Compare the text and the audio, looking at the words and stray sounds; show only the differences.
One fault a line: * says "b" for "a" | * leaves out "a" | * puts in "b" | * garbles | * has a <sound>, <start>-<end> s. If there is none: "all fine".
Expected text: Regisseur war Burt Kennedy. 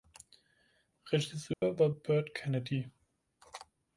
* has a dropout, 1.5-1.6 s